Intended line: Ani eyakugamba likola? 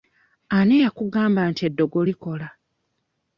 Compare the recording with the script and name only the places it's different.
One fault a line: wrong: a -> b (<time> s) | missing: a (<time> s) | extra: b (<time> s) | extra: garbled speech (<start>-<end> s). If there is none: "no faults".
extra: nti eddogo (1.5 s)